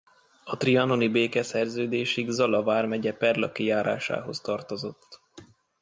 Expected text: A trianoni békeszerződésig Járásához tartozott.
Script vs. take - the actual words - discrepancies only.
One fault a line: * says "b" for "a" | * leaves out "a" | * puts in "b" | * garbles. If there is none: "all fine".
* puts in "Zala vármegye Perlaki"